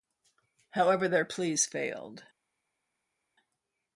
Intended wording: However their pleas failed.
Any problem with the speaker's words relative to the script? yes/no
no